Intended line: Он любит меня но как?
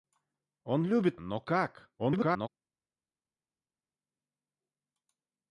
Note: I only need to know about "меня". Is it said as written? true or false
false